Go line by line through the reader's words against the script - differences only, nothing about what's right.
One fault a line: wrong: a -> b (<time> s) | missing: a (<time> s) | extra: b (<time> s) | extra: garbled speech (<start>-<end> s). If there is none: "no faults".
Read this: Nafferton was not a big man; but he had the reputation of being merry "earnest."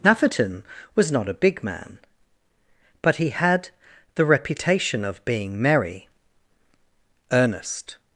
no faults